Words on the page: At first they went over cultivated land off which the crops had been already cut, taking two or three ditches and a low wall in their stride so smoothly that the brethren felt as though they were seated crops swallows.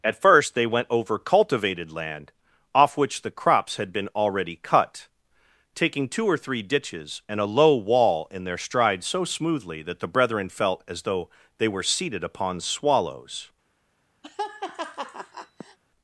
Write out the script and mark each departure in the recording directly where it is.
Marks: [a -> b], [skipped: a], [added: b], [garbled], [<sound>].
At first they went over cultivated land off which the crops had been already cut, taking two or three ditches and a low wall in their stride so smoothly that the brethren felt as though they were seated [crops -> upon] swallows. [laugh]